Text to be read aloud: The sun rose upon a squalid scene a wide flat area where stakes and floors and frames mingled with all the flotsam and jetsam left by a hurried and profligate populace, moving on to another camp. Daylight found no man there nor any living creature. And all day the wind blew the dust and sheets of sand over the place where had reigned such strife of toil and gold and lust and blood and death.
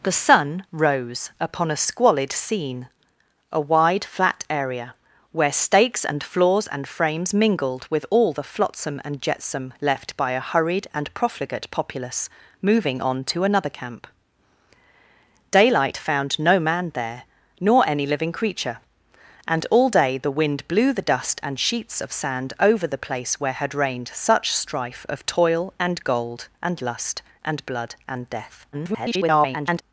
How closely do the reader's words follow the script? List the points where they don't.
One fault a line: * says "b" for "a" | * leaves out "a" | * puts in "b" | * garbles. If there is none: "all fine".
* garbles